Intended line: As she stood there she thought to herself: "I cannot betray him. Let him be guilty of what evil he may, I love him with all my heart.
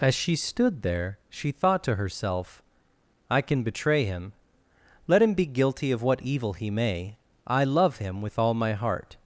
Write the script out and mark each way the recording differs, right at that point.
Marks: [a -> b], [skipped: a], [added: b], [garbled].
As she stood there she thought to herself: "I [cannot -> can] betray him. Let him be guilty of what evil he may, I love him with all my heart.